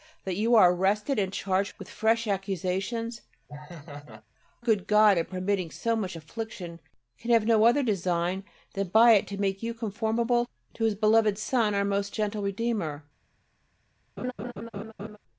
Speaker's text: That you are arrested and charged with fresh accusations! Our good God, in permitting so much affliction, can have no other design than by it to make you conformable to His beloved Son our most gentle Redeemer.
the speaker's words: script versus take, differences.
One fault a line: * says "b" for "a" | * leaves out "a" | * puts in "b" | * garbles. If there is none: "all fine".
* leaves out "Our"